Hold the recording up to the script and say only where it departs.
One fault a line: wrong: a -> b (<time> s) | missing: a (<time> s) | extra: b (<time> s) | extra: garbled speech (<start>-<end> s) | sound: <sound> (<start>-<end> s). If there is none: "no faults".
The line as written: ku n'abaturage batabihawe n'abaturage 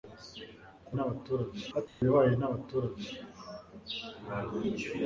sound: dropout (1.9-2.0 s)